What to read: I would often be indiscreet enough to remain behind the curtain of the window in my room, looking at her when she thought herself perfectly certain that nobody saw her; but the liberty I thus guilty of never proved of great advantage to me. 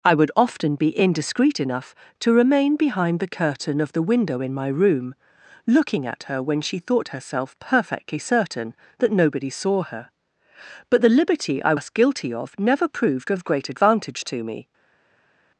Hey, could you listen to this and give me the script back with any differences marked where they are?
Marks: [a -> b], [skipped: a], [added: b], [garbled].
I would often be indiscreet enough to remain behind the curtain of the window in my room, looking at her when she thought herself perfectly certain that nobody saw her; but the liberty I thus guilty of never proved of great advantage to me.